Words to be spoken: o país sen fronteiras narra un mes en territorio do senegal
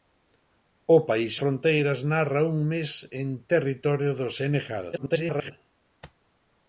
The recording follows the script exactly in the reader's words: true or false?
false